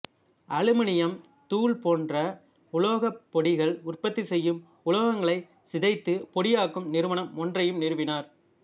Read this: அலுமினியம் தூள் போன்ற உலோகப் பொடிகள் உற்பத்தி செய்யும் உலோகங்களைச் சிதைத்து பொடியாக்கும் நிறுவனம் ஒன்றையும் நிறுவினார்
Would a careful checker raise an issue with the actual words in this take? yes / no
no